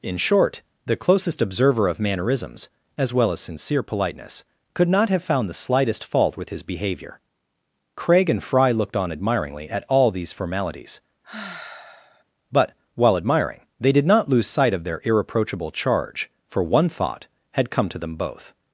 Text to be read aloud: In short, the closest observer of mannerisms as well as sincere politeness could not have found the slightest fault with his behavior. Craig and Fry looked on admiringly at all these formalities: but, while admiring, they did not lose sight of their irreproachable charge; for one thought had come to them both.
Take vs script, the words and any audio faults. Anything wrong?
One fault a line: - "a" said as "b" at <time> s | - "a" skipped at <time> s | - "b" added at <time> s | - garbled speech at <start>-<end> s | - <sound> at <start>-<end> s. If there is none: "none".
- sigh at 11.2-12.2 s